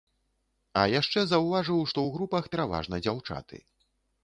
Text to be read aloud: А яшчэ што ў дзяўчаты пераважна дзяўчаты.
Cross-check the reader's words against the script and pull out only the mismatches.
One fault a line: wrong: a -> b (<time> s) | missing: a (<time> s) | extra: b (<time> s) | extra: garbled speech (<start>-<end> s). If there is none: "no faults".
extra: заўважыў (1.3 s)
wrong: дзяўчаты -> групах (2.2 s)